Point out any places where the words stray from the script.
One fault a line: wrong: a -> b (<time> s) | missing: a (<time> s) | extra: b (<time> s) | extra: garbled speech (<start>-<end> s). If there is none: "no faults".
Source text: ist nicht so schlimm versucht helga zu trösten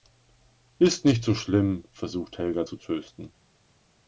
no faults